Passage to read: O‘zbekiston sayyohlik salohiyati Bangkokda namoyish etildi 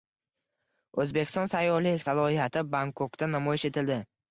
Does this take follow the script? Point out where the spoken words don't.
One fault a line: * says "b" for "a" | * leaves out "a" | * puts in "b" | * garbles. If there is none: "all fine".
all fine